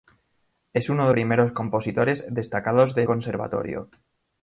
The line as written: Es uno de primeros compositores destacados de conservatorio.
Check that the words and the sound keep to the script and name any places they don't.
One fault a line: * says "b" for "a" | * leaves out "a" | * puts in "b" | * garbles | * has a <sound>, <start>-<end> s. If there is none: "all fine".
all fine